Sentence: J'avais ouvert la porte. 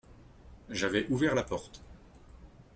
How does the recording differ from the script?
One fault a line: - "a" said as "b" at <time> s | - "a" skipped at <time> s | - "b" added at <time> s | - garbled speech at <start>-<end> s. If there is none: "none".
none